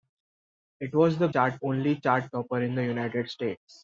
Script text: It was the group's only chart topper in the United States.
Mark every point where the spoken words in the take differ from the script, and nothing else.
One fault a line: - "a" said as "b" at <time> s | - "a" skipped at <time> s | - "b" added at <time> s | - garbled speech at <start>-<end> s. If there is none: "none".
- "group's" said as "chart" at 1.3 s